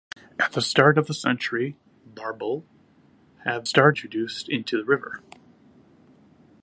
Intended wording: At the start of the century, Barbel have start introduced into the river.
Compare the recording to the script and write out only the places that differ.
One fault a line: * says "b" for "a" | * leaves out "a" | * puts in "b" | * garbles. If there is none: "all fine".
all fine